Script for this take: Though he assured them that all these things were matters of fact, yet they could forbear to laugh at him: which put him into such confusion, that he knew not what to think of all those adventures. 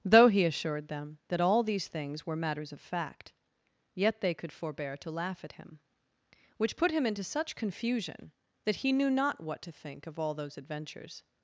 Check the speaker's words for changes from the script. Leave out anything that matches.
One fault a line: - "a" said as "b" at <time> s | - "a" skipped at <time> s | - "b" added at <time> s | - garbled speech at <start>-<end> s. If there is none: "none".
none